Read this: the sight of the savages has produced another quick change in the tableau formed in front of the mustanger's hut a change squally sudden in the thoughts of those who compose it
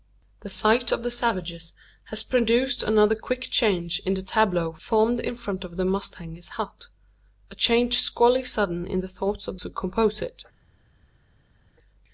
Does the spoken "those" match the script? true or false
false